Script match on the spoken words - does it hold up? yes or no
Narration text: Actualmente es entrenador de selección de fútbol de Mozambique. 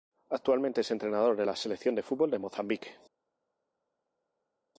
no